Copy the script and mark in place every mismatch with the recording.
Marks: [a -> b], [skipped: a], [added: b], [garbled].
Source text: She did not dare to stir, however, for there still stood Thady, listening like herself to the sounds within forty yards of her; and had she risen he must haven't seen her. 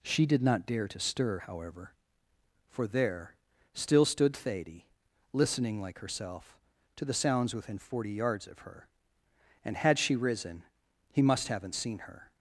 She did not dare to stir, however, for there still stood Thady, listening like herself to the sounds within forty yards of her; and had she risen he must haven't seen her.